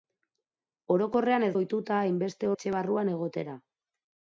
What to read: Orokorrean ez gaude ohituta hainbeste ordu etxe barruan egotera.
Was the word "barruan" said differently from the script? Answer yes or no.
no